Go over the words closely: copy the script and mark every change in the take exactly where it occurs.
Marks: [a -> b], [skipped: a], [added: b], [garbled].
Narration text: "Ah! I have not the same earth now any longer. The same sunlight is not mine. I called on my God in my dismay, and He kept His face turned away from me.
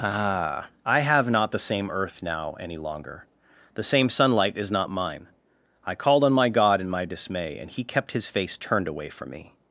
"Ah! I have not the same earth now any longer. The same sunlight is not mine. I called on my God in my dismay, and He kept His face turned away from me.